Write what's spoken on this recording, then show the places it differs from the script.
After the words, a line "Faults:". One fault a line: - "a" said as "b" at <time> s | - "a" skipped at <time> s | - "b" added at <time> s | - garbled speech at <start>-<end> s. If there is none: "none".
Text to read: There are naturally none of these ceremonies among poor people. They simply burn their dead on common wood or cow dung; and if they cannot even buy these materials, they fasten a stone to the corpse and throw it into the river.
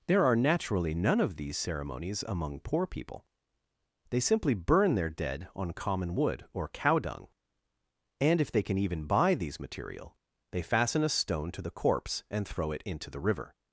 There are naturally none of these ceremonies among poor people. They simply burn their dead on common wood or cow dung; and if they can even buy these material, they fasten a stone to the corpse and throw it into the river.
Faults:
- "cannot" said as "can" at 8.6 s
- "materials" said as "material" at 9.6 s